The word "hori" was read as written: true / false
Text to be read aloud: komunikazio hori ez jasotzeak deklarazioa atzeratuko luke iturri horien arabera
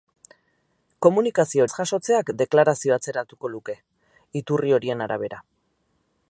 false